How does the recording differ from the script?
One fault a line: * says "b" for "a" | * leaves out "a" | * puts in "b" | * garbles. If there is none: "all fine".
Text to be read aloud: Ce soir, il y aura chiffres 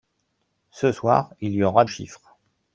all fine